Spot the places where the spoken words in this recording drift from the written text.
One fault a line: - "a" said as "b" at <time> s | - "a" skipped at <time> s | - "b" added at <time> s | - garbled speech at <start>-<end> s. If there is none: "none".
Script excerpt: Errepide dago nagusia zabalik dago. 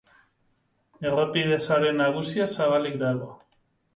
- "dago" said as "sare" at 1.7 s